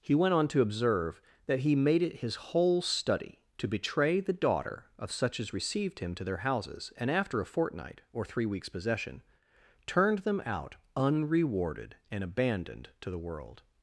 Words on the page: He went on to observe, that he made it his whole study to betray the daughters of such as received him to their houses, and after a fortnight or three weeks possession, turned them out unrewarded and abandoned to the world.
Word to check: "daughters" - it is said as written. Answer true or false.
false